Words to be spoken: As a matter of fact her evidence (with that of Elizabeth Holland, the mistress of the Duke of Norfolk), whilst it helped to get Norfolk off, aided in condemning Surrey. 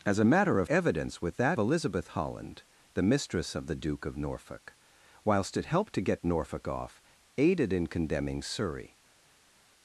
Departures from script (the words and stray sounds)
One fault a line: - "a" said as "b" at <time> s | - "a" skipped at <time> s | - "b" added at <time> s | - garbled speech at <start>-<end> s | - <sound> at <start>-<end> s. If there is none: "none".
- "fact her" skipped at 0.7 s
- "of" skipped at 1.6 s